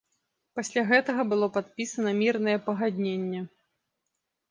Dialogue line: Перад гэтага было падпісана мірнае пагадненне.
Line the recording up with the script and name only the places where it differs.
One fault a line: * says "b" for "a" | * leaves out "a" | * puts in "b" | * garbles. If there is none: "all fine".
* says "Пасля" for "Перад"